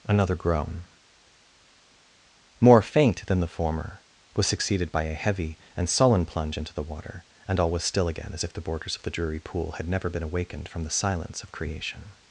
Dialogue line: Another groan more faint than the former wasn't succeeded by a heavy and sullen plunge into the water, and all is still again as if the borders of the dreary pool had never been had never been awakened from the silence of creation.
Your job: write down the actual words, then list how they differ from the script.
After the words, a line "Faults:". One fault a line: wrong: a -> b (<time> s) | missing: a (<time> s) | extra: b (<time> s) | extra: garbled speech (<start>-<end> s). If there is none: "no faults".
Another groan more faint than the former was succeeded by a heavy and sullen plunge into the water, and all was still again as if the borders of the dreary pool had never been awakened from the silence of creation.
Faults:
wrong: wasn't -> was (4.3 s)
wrong: is -> was (7.7 s)
missing: had never been (10.2 s)